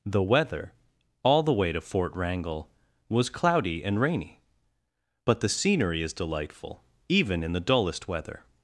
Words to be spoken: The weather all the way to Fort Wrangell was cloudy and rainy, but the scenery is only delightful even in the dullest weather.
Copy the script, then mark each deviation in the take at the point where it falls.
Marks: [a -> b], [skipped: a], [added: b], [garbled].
The weather all the way to Fort Wrangell was cloudy and rainy, but the scenery is [skipped: only] delightful even in the dullest weather.